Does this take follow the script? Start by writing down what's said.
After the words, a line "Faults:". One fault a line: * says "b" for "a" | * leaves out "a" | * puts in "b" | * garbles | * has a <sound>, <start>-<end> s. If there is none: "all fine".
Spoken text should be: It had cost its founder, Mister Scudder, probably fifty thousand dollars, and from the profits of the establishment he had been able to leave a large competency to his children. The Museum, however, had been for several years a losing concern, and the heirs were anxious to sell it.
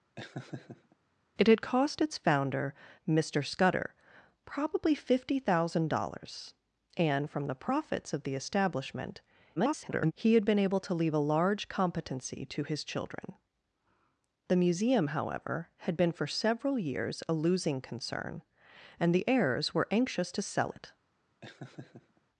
It had cost its founder, Mister Scudder, probably fifty thousand dollars, and from the profits of the establishment [garbled] he had been able to leave a large competency to his children. The Museum, however, had been for several years a losing concern, and the heirs were anxious to sell it.
Faults:
* has a laugh, 0.2-1.0 s
* garbles
* has a laugh, 21.4-22.2 s